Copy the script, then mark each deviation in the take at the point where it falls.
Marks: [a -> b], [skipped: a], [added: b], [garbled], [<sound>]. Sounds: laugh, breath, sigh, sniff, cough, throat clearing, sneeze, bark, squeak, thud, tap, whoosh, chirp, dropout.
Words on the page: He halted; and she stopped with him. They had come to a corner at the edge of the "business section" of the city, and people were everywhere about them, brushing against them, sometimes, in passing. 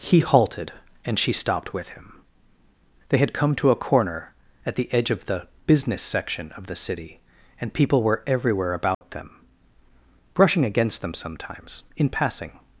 He halted; and she stopped with him. They had come to a corner at the edge of the "business section" of the city, and people were everywhere about [dropout] them, brushing against them, sometimes, in passing.